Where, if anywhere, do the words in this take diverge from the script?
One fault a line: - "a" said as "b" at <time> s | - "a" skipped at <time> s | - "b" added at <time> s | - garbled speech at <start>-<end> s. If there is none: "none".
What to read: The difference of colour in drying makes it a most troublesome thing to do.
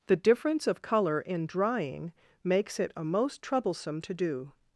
- "thing" skipped at 4.0 s